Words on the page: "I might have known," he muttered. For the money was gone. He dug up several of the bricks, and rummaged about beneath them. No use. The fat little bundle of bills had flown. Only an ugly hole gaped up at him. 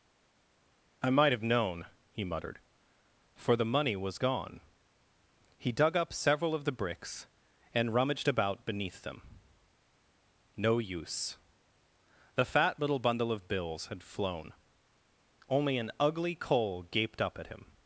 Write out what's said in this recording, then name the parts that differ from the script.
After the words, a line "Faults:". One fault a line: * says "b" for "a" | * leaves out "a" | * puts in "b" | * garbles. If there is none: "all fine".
"I might have known," he muttered. For the money was gone. He dug up several of the bricks, and rummaged about beneath them. No use. The fat little bundle of bills had flown. Only an ugly coal gaped up at him.
Faults:
* says "coal" for "hole"